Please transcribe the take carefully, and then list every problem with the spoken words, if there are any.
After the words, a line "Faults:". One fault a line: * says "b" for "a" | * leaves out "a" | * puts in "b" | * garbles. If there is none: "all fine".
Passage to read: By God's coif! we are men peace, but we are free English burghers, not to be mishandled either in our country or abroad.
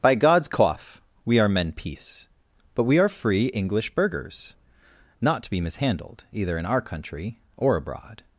By God's coif! we are men peace, but we are free English burghers, not to be mishandled either in our country or abroad.
Faults:
all fine